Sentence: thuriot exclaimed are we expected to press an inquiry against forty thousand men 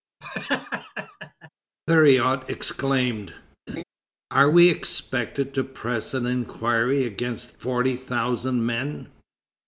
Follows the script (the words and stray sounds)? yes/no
no